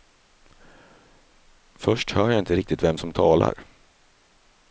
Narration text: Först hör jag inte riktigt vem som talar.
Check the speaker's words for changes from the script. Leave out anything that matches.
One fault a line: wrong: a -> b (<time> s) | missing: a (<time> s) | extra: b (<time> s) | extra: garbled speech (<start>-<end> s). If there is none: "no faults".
no faults